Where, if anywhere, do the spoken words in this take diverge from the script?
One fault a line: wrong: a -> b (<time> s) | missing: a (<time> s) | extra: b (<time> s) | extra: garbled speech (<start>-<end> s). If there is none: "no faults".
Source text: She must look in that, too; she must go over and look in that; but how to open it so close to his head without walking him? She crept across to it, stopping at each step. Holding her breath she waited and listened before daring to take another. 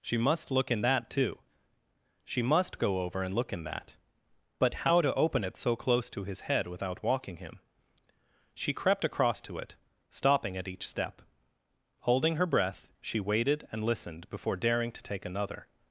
no faults